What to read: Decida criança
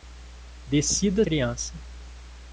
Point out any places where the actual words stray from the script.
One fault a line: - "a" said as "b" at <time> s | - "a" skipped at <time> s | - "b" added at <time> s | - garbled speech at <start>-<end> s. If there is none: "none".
none